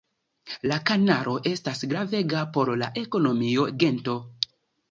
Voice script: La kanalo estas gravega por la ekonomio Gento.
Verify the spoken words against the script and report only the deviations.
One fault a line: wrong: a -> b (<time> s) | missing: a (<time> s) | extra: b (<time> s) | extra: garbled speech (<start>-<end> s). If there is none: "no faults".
no faults